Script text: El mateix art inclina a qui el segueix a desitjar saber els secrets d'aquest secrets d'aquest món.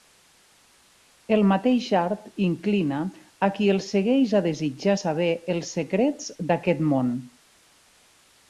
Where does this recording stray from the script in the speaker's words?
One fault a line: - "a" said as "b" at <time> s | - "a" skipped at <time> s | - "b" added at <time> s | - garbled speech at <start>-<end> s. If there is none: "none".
- "secrets d'aquest" skipped at 6.8 s